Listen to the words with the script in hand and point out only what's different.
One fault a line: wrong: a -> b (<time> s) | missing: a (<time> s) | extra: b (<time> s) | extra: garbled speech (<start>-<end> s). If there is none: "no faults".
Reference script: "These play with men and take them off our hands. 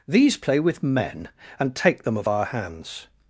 wrong: off -> of (2.2 s)